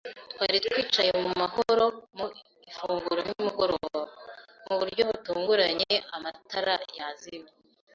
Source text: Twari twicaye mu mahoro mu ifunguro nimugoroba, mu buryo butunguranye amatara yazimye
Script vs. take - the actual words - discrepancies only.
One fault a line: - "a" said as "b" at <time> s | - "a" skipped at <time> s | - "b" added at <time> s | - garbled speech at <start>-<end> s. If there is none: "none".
none